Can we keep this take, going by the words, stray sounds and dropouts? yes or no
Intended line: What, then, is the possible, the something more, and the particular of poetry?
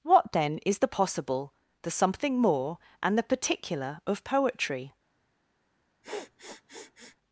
no